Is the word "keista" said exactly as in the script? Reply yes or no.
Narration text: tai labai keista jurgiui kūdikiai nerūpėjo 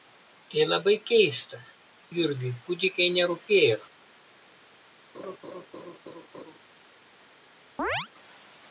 yes